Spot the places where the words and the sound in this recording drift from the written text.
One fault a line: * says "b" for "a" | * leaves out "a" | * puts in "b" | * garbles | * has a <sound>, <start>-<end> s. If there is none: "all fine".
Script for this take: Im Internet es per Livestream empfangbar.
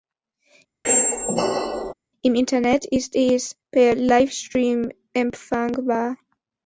* has a squeak, 0.8-1.9 s
* puts in "ist"